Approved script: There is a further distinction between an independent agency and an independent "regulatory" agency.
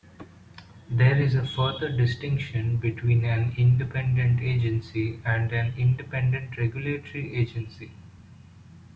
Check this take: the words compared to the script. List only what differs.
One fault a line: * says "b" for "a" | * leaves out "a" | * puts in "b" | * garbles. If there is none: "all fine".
all fine